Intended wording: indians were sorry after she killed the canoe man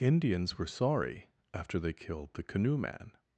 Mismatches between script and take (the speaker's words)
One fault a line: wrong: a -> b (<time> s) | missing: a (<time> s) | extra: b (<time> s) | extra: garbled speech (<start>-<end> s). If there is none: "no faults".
wrong: she -> they (1.8 s)